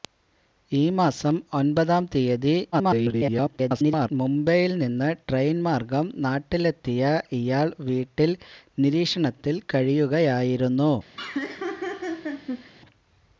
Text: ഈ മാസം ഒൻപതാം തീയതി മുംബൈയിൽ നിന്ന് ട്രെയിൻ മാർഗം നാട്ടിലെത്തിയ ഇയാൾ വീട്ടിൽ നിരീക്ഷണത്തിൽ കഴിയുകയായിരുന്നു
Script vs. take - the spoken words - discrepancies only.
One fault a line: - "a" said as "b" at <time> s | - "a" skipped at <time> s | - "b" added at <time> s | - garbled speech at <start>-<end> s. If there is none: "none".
- garbled speech at 2.7-4.1 s